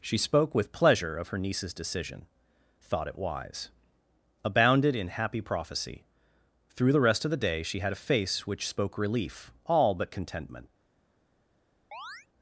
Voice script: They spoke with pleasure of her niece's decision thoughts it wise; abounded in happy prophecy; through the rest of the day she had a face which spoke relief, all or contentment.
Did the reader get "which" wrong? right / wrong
right